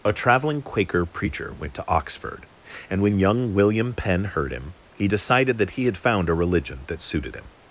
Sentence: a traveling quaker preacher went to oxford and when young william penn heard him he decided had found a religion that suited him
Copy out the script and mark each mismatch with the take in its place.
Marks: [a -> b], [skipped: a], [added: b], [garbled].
a traveling quaker preacher went to oxford and when young william penn heard him he decided [added: that he] had found a religion that suited him